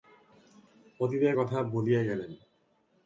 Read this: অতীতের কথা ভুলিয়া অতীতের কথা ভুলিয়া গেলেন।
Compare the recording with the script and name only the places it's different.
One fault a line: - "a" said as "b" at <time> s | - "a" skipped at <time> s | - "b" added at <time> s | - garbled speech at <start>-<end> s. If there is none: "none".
- "অতীতের কথা ভুলিয়া" skipped at 2.0 s